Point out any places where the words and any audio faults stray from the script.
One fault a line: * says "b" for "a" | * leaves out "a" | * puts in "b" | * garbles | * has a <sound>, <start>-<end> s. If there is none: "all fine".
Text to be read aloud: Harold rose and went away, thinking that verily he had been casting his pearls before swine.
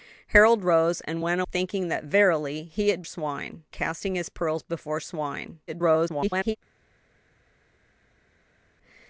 * leaves out "away"
* says "swine" for "been"
* garbles